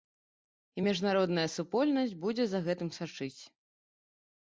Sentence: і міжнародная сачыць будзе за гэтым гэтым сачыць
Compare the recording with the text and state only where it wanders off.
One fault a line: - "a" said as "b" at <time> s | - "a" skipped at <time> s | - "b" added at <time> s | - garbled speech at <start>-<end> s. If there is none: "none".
- "сачыць" said as "супольнасць" at 1.6 s
- "гэтым" skipped at 2.9 s